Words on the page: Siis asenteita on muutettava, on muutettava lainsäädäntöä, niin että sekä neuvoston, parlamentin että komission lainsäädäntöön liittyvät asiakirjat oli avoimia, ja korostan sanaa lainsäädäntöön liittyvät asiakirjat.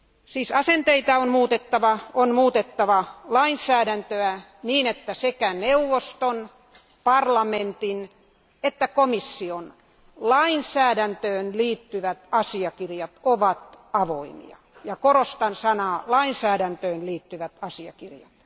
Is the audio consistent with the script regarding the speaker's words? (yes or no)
no